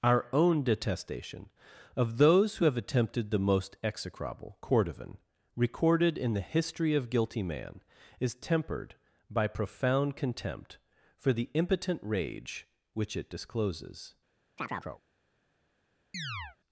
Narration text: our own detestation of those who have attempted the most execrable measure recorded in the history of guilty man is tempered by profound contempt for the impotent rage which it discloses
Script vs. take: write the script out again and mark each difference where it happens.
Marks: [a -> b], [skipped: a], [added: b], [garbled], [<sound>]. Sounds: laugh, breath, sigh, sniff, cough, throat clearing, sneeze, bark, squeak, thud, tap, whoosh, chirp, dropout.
our own detestation of those who have attempted the most execrable [measure -> cordovan] recorded in the history of guilty man is tempered by profound contempt for the impotent rage which it discloses [chirp] [chirp]